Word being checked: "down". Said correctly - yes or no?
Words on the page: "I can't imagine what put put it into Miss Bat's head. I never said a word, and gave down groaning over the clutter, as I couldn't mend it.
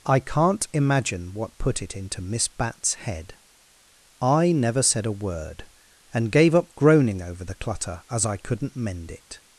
no